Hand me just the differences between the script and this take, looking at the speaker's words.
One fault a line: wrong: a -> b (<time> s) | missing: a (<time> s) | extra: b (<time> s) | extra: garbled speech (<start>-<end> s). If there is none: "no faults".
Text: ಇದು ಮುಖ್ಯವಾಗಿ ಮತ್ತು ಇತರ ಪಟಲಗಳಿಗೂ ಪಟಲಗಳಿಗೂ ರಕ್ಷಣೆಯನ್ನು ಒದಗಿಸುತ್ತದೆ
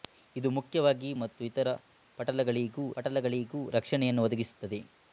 no faults